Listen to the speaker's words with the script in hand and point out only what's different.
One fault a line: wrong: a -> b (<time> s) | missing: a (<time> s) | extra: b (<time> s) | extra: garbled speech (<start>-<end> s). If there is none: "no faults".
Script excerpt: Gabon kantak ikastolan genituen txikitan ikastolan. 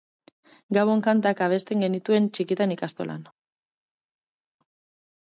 wrong: ikastolan -> abesten (1.5 s)